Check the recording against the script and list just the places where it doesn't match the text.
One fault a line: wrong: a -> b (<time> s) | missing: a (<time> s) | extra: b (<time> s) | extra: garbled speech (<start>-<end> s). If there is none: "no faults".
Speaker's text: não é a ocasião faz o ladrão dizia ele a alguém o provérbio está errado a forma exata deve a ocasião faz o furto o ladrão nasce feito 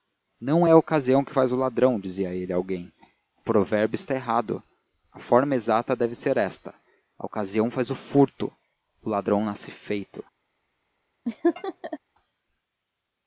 extra: que (1.2 s)
extra: ser esta (6.1 s)